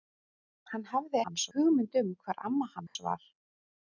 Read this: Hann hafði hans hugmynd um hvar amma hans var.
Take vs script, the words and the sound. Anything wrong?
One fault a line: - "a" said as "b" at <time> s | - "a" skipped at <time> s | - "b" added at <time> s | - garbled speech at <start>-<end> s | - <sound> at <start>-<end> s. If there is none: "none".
- dropout at 2.9-3.0 s